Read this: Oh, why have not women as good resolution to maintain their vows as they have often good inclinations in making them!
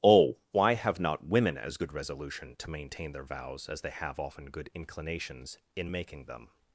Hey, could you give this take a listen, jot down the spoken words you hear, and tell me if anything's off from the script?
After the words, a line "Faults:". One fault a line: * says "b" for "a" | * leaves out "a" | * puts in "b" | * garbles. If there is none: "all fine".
Oh, why have not women as good resolution to maintain their vows as they have often good inclinations in making them!
Faults:
all fine